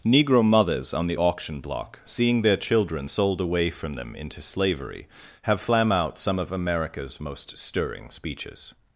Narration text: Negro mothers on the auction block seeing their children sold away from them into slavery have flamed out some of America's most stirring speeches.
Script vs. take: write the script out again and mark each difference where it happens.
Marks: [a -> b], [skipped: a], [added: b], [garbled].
Negro mothers on the auction block seeing their children sold away from them into slavery have [flamed -> flam] out some of America's most stirring speeches.